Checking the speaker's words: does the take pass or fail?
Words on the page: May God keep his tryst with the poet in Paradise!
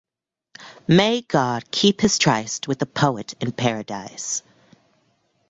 pass